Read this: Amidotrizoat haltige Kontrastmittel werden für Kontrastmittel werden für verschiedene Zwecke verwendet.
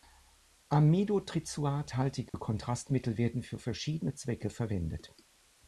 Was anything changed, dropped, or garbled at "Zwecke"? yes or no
no